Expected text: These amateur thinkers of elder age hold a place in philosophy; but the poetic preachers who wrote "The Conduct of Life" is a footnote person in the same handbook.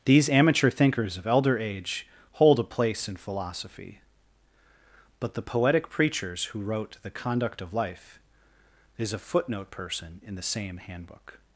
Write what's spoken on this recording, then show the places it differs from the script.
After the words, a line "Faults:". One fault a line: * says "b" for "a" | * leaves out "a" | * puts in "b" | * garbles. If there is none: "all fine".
These amateur thinkers of elder age hold a place in philosophy; but the poetic preachers who wrote "The Conduct of Life" is a footnote person in the same handbook.
Faults:
all fine